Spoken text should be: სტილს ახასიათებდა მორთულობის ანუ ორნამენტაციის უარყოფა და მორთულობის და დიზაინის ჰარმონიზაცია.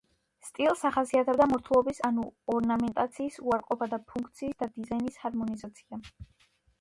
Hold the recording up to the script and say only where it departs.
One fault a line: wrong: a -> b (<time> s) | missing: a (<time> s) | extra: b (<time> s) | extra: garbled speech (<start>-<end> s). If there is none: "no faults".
wrong: მორთულობის -> ფუნქციის (4.1 s)